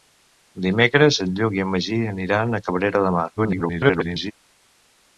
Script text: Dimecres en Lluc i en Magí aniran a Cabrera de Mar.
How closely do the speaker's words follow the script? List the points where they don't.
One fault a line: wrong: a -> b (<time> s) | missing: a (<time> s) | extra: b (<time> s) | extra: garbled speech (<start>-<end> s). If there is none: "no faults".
extra: garbled speech (3.4-4.3 s)